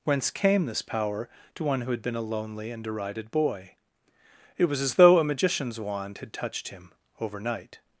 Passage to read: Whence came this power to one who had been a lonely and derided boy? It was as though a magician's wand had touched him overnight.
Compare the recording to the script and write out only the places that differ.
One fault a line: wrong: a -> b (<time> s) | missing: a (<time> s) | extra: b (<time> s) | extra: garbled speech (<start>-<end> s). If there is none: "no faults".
no faults